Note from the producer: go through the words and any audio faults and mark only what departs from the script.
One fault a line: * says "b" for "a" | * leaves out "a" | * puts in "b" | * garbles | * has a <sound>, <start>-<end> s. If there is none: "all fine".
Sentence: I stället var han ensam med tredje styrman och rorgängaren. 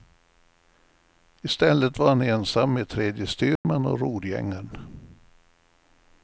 * has a dropout, 3.6-3.6 s